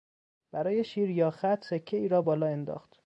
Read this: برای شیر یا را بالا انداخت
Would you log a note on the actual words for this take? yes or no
yes